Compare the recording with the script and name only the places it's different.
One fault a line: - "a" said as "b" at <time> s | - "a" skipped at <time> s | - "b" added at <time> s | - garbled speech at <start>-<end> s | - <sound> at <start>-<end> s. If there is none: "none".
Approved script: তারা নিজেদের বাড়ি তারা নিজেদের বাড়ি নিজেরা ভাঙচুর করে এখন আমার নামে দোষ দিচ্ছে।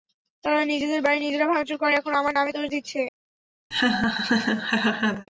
- "তারা নিজেদের বাড়ি" skipped at 1.2 s
- laugh at 3.7-5.3 s